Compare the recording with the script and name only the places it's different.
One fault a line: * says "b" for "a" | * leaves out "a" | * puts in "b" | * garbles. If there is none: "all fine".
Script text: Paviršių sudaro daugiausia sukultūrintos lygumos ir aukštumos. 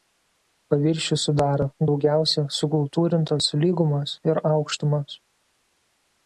all fine